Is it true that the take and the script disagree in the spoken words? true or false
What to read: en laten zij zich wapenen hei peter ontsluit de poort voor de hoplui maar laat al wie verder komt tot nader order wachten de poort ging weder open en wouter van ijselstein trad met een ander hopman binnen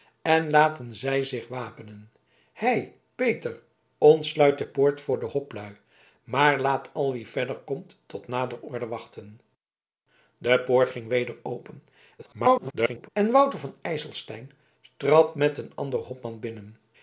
true